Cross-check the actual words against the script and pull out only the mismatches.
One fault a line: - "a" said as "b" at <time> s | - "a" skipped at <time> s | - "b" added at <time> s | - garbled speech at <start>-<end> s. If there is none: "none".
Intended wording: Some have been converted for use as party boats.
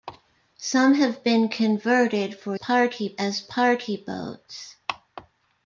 - "use" said as "party" at 2.5 s